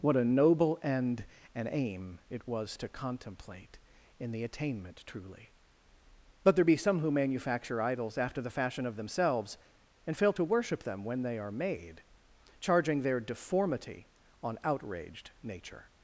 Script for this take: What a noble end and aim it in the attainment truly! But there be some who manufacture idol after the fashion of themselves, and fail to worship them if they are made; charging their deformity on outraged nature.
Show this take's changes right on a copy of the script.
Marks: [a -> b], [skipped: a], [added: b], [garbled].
What a noble end and aim it [added: was to contemplate] in the attainment truly! But there be some who manufacture [idol -> idols] after the fashion of themselves, and fail to worship them [if -> when] they are made; charging their deformity on outraged nature.